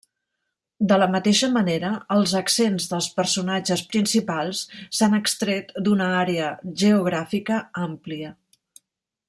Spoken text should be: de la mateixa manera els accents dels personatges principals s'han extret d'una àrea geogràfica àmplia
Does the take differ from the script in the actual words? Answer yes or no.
no